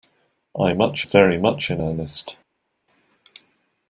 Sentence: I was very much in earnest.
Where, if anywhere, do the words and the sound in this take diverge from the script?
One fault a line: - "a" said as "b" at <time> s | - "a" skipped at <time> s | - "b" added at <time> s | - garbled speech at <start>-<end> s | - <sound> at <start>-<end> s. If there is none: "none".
- "was" said as "much" at 0.7 s